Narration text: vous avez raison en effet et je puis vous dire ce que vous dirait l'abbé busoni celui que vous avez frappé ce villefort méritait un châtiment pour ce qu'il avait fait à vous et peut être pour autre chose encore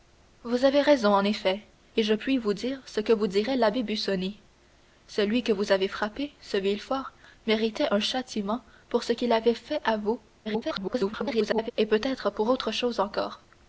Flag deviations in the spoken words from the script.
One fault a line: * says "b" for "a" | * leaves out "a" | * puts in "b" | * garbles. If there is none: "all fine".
* garbles